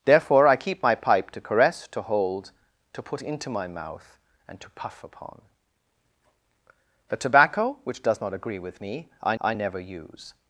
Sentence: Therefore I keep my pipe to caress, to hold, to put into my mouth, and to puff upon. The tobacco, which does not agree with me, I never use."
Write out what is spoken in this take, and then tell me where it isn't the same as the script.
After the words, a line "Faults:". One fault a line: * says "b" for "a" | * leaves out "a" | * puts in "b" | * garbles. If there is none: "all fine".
Therefore I keep my pipe to caress, to hold, to put into my mouth, and to puff upon. The tobacco, which does not agree with me, I I never use."
Faults:
* puts in "I"